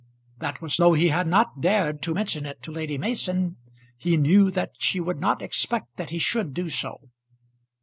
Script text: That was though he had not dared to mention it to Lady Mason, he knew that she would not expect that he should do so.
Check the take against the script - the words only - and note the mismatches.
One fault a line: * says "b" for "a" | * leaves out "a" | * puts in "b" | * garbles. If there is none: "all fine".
all fine